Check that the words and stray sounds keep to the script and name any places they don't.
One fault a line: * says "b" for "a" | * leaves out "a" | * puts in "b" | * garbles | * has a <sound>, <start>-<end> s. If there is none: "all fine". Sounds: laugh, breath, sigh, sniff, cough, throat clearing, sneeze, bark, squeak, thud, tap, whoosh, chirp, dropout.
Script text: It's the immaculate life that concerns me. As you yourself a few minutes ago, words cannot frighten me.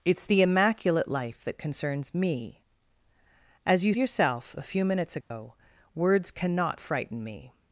* has a dropout, 5.2-5.3 s